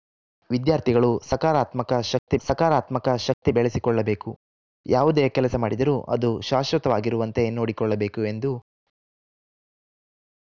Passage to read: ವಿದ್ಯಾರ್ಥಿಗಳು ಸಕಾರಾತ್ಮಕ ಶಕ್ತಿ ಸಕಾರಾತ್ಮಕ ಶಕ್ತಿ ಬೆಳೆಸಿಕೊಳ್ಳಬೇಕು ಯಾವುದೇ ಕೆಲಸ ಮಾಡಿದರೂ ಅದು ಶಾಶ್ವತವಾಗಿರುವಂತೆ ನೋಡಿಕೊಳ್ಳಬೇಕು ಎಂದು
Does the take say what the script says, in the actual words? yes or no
yes